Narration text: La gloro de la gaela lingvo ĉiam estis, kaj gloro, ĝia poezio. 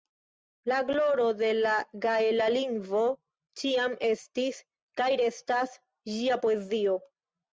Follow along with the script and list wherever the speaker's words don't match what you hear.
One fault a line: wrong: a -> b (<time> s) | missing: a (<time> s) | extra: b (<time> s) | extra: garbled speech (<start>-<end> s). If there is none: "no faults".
wrong: gloro -> restas (5.2 s)